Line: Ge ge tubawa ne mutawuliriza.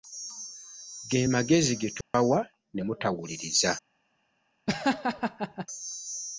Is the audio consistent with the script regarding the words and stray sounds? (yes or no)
no